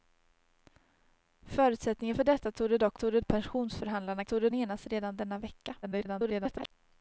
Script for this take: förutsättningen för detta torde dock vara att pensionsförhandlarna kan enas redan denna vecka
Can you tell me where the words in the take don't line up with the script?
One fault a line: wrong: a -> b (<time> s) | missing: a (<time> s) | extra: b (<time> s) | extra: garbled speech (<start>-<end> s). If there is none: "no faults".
wrong: vara -> torde (2.9 s)
wrong: kan -> torde (4.2 s)
extra: garbled speech (5.8-6.7 s)